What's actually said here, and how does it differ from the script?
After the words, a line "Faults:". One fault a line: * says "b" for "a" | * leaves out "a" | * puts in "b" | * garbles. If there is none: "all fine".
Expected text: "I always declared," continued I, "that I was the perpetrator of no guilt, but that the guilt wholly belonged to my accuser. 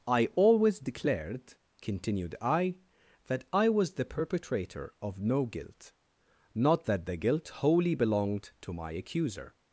"I always declared," continued I, "that I was the perpetrator of no guilt, not that the guilt wholly belonged to my accuser.
Faults:
* says "not" for "but"